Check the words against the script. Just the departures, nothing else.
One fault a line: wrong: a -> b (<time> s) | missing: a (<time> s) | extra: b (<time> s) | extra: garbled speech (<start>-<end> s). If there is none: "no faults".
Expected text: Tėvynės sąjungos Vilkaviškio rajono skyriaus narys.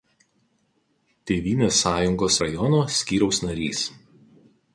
missing: Vilkaviškio (2.4 s)